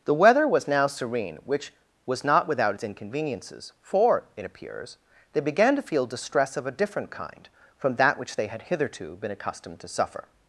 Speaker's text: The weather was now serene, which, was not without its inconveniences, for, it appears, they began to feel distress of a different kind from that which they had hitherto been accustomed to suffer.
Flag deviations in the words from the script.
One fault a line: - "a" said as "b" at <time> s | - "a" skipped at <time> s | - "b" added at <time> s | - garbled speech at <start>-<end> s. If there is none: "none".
none